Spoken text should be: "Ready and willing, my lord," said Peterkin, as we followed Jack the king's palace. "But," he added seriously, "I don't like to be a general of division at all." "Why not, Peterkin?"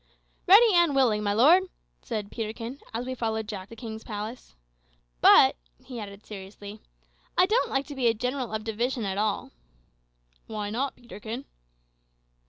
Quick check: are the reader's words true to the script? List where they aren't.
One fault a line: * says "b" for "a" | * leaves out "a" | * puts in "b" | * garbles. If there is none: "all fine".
all fine